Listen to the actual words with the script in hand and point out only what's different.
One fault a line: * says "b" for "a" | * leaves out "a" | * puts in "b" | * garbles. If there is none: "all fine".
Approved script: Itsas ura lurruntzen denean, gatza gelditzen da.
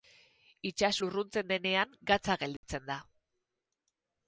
* leaves out "ura"